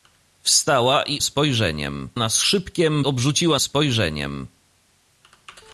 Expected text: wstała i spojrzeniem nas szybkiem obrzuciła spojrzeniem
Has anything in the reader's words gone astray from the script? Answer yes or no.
no